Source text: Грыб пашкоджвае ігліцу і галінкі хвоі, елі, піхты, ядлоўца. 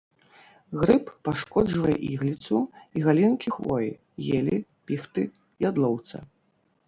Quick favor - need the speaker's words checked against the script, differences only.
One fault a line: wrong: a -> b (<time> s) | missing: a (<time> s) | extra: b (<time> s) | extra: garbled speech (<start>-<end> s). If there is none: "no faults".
no faults